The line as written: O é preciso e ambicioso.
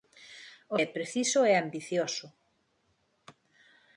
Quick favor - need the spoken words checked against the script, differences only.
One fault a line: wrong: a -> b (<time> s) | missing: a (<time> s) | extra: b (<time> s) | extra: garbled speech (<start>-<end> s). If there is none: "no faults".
no faults